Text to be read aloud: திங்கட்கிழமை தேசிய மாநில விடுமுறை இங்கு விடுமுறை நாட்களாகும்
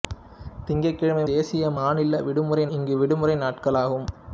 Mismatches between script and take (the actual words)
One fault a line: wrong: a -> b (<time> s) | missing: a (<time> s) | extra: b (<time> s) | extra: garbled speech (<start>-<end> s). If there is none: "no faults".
no faults